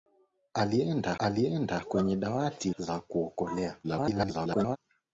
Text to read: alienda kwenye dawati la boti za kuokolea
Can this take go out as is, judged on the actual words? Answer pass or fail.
fail